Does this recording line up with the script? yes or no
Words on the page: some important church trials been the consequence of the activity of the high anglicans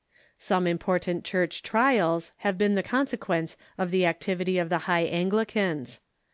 no